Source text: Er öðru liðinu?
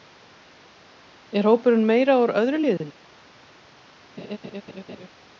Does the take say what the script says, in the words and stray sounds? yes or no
no